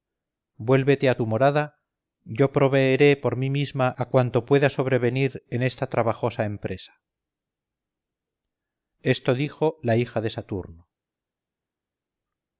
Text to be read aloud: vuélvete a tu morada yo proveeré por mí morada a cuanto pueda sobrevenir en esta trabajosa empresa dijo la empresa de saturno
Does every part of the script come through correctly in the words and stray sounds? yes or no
no